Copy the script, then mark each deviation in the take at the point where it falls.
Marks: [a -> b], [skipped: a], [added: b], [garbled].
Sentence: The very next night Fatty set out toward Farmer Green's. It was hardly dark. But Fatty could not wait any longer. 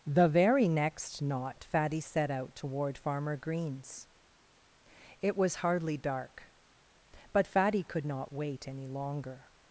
The very next [night -> knot] Fatty set out toward Farmer Green's. It was hardly dark. But Fatty could not wait any longer.